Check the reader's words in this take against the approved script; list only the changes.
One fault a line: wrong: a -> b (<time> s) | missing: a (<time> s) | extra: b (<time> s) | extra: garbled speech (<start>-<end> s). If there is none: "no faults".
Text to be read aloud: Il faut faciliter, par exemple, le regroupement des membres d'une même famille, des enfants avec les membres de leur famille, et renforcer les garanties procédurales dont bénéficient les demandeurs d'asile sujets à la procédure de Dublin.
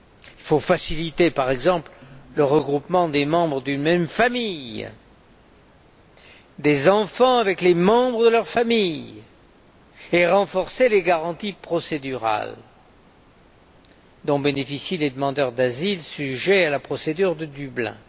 no faults